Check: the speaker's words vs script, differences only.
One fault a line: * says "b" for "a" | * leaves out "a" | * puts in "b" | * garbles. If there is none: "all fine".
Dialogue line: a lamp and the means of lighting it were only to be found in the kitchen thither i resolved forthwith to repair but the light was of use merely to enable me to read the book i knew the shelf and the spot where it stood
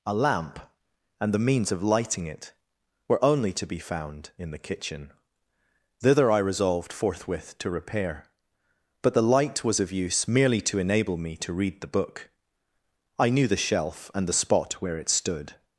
all fine